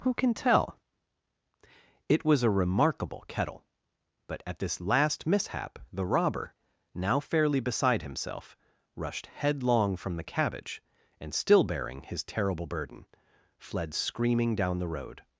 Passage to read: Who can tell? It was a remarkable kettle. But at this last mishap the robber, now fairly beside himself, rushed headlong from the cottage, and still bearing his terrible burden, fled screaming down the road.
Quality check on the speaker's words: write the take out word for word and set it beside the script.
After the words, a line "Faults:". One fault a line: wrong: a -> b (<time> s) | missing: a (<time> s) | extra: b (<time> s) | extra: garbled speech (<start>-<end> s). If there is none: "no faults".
Who can tell? It was a remarkable kettle. But at this last mishap the robber, now fairly beside himself, rushed headlong from the cabbage, and still bearing his terrible burden, fled screaming down the road.
Faults:
wrong: cottage -> cabbage (10.2 s)